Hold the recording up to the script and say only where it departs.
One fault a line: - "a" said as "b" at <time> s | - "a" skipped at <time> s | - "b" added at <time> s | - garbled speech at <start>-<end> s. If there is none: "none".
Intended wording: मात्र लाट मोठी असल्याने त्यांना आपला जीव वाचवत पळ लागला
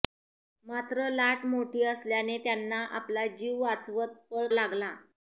none